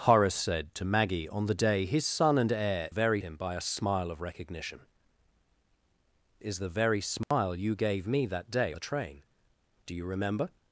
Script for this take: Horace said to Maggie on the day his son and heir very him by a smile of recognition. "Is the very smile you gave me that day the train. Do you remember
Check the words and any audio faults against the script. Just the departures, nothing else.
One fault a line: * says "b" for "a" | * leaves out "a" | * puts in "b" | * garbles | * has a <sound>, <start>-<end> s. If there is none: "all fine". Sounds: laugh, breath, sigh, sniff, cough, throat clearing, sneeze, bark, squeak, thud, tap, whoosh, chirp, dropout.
* has a dropout, 7.2-7.3 s